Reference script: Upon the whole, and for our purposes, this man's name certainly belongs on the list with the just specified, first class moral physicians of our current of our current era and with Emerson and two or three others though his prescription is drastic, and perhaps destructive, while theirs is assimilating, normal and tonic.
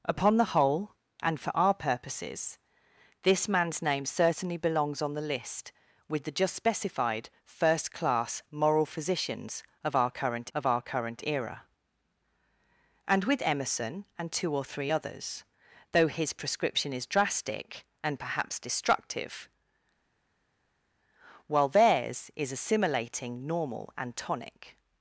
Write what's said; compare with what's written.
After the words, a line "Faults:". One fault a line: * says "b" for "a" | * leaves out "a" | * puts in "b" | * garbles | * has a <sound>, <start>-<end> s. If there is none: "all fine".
Upon the whole, and for our purposes, this man's name certainly belongs on the list with the just specified, first class moral physicians of our current of our current era and with Emerson and two or three others though his prescription is drastic, and perhaps destructive, while theirs is assimilating, normal and tonic.
Faults:
all fine